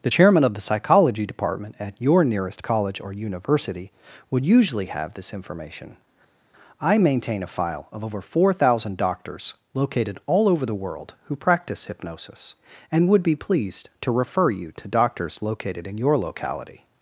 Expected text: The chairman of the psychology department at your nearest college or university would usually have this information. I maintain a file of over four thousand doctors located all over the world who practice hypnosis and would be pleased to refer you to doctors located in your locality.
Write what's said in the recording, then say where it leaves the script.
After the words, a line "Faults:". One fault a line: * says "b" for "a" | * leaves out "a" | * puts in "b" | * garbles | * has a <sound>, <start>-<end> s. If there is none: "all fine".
The chairman of the psychology department at your nearest college or university would usually have this information. I maintain a file of over four thousand doctors located all over the world who practice hypnosis and would be pleased to refer you to doctors located in your locality.
Faults:
all fine